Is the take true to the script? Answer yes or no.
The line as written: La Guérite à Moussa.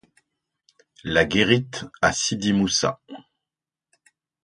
no